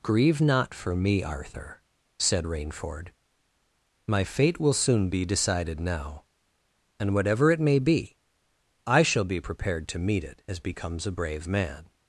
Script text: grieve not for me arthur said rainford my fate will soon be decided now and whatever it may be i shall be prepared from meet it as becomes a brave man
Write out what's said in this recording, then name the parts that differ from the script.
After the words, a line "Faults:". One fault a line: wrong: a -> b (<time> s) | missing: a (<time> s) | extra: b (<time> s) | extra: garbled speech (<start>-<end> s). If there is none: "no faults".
grieve not for me arthur said rainford my fate will soon be decided now and whatever it may be i shall be prepared to meet it as becomes a brave man
Faults:
wrong: from -> to (9.9 s)